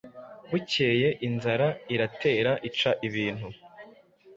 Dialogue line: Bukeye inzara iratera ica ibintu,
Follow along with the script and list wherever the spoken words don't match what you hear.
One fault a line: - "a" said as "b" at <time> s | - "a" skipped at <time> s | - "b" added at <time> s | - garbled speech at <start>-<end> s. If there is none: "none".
none